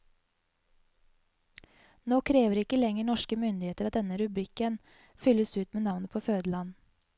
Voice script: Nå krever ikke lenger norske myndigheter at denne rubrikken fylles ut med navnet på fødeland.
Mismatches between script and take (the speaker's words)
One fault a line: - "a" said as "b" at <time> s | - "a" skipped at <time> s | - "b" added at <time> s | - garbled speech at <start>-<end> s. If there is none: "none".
none